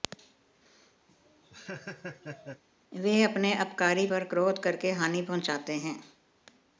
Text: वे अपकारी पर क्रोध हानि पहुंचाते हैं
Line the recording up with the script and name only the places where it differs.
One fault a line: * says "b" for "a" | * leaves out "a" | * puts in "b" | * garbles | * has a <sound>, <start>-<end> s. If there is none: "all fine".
* has a laugh, 1.1-2.6 s
* puts in "अपने"
* puts in "करके"